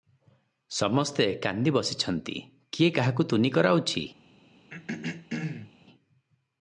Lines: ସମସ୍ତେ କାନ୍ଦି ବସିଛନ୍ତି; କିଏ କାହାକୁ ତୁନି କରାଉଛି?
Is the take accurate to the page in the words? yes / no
yes